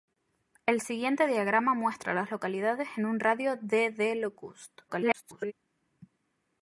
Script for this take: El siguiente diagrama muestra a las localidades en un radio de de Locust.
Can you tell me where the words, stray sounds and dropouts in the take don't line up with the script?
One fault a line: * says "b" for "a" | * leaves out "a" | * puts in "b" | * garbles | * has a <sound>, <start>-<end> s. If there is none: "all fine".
* garbles